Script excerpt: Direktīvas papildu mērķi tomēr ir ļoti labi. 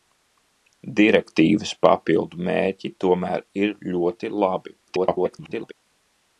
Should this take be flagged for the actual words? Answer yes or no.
yes